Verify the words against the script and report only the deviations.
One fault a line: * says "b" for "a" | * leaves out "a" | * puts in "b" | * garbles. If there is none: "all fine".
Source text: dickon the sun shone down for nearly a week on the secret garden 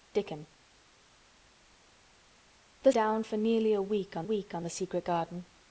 * leaves out "sun shone"
* puts in "week on"